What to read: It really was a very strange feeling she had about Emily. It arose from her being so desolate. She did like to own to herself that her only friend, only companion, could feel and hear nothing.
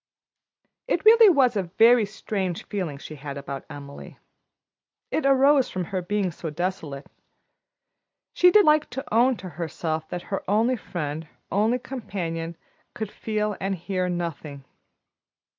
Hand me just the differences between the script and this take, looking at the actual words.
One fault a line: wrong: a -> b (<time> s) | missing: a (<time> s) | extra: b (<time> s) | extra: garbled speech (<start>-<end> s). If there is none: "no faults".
no faults